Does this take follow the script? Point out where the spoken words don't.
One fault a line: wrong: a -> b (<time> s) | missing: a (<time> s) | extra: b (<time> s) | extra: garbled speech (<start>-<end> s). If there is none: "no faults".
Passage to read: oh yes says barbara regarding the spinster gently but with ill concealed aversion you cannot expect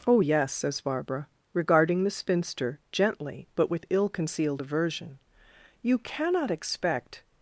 no faults